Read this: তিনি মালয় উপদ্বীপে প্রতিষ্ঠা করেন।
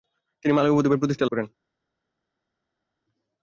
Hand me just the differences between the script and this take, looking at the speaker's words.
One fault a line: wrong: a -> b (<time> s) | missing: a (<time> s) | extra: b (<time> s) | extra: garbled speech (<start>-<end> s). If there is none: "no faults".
no faults